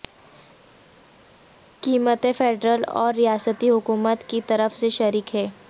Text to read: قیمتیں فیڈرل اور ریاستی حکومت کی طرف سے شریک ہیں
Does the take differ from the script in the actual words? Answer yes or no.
no